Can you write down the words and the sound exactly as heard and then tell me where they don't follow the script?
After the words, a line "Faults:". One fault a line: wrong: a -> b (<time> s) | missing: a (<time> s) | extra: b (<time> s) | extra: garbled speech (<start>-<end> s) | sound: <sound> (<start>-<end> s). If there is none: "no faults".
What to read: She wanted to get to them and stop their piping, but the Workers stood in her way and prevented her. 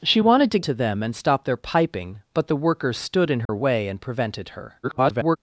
She wanted to to them and stop their piping, but the Workers stood in her way and prevented her. [garbled]
Faults:
missing: get (0.6 s)
sound: dropout (3.5-3.5 s)
extra: garbled speech (4.8-5.4 s)